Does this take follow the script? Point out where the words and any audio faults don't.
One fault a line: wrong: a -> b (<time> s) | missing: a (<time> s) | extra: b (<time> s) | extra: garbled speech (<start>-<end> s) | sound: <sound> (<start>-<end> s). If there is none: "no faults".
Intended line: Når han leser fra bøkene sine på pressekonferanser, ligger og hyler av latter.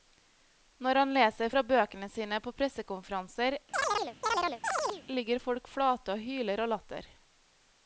sound: chirp (3.7-5.0 s)
extra: folk flate (5.4 s)